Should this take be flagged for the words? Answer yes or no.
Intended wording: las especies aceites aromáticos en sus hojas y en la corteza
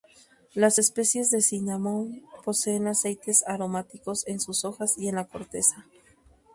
yes